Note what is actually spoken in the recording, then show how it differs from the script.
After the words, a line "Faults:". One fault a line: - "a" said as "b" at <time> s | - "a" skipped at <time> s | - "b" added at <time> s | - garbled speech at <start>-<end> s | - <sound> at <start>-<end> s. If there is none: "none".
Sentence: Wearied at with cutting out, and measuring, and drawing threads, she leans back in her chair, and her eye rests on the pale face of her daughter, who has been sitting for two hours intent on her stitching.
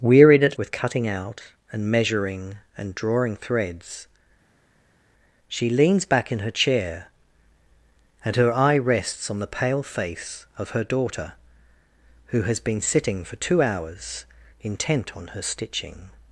Wearied at with cutting out, and measuring, and drawing threads, she leans back in her chair, and her eye rests on the pale face of her daughter, who has been sitting for two hours intent on her stitching.
Faults:
none